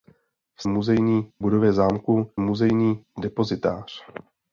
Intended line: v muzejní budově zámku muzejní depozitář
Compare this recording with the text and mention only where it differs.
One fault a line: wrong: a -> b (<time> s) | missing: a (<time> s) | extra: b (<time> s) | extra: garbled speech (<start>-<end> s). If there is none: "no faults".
no faults